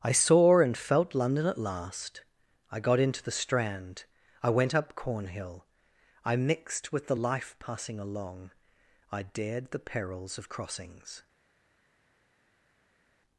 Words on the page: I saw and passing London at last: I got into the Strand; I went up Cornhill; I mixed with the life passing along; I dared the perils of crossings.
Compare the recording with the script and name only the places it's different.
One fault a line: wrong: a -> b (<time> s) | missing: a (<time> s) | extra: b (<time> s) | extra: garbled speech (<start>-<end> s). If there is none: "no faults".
wrong: passing -> felt (0.8 s)